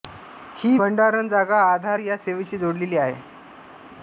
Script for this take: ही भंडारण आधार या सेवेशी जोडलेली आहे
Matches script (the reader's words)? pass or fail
fail